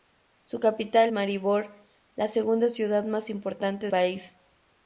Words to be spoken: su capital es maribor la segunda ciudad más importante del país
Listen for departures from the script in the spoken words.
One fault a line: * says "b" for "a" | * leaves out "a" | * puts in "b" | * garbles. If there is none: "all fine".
* leaves out "es"
* leaves out "del"